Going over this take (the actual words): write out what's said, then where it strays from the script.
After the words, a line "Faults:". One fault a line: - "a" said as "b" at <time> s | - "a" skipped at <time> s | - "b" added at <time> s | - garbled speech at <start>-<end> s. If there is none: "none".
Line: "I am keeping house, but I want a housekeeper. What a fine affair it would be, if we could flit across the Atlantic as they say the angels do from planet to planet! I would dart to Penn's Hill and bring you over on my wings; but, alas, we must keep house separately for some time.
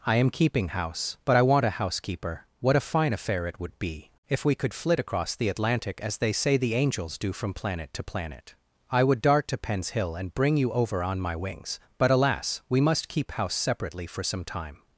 "I am keeping house, but I want a housekeeper. What a fine affair it would be, if we could flit across the Atlantic as they say the angels do from planet to planet! I would dart to Penn's Hill and bring you over on my wings; but, alas, we must keep house separately for some time.
Faults:
none